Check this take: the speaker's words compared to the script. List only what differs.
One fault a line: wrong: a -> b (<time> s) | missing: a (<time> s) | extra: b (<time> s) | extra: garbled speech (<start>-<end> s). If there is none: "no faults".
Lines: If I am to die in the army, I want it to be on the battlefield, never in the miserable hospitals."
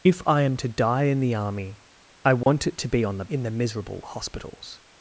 missing: battlefield never (3.2 s)